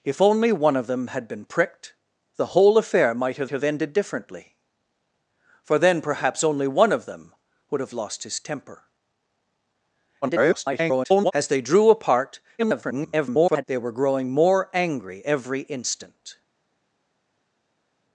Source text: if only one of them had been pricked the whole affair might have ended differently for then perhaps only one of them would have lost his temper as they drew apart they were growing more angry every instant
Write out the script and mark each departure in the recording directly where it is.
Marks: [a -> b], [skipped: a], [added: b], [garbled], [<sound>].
if only one of them had been pricked the whole affair might have [added: have] ended differently for then perhaps only one of them would have lost his temper [garbled] as they drew apart [garbled] they were growing more angry every instant